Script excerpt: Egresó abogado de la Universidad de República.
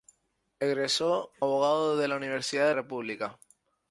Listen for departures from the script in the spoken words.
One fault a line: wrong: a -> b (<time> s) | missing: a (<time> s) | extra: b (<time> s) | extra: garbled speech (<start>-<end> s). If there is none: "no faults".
no faults